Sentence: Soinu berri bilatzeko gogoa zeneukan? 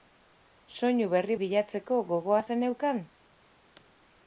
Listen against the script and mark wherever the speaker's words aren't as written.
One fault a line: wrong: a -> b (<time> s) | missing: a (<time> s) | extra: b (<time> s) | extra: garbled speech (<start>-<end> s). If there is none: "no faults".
no faults